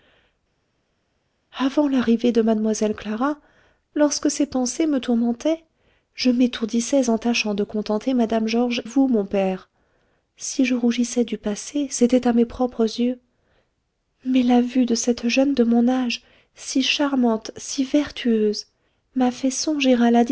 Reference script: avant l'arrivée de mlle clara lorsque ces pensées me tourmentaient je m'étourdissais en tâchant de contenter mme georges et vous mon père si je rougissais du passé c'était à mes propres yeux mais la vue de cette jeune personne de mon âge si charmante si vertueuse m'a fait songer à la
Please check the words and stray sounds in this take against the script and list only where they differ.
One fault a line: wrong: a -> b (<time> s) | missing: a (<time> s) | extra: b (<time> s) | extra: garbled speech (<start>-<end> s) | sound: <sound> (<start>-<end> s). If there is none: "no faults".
missing: et (8.8 s)
missing: personne (15.6 s)